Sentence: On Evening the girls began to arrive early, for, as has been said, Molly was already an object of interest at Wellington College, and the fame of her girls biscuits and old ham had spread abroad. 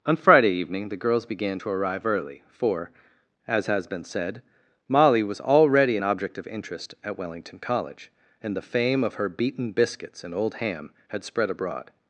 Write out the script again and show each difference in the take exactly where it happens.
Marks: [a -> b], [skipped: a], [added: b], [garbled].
On [added: Friday] Evening the girls began to arrive early, for, as has been said, Molly was already an object of interest at Wellington College, and the fame of her [girls -> beaten] biscuits and old ham had spread abroad.